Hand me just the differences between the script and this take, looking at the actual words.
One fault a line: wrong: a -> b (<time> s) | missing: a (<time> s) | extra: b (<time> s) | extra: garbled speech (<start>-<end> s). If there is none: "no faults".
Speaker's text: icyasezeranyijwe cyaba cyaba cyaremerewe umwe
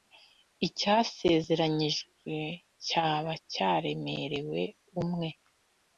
missing: cyaba (3.3 s)